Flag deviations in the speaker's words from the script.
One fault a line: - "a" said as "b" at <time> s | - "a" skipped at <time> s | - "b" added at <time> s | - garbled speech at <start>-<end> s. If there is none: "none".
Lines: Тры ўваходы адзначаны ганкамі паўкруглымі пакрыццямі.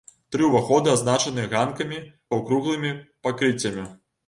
none